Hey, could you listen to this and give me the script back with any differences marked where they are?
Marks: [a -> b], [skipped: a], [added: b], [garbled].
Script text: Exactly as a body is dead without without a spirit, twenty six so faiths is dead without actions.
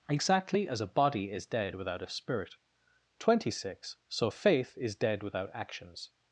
Exactly as a body is dead without [skipped: without] a spirit, twenty six so [faiths -> faith] is dead without actions.